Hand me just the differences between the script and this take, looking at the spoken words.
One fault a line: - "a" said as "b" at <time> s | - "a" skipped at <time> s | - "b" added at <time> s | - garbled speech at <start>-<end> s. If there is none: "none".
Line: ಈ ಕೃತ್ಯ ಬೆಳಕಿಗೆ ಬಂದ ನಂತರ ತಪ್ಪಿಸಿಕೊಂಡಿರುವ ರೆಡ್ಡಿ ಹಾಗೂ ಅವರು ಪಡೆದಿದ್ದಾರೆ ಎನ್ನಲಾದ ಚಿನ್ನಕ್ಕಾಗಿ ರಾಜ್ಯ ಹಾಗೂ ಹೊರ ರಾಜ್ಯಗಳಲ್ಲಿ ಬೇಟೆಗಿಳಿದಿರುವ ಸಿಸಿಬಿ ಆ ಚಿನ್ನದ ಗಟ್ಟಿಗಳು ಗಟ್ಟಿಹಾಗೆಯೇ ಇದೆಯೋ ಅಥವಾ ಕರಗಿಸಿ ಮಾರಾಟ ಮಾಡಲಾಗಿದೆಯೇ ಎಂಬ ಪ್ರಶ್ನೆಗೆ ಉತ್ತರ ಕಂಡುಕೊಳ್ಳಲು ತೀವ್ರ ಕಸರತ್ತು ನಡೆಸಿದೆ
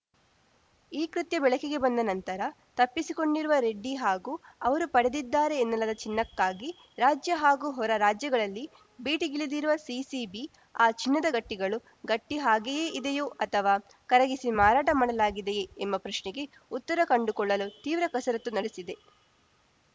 none